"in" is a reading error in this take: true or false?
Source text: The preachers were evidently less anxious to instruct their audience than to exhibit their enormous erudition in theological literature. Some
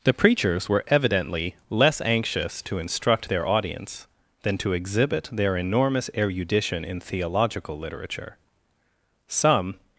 false